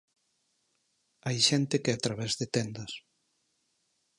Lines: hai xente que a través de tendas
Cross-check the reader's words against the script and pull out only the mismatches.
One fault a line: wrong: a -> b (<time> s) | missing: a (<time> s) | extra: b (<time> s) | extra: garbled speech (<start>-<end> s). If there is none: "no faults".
no faults